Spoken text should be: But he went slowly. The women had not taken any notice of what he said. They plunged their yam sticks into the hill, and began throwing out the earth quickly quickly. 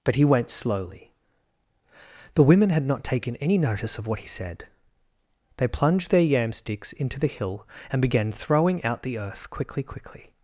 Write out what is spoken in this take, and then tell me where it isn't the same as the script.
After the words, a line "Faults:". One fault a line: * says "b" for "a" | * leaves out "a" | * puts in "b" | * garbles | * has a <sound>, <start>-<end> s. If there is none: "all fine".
But he went slowly. The women had not taken any notice of what he said. They plunged their yam sticks into the hill, and began throwing out the earth quickly quickly.
Faults:
all fine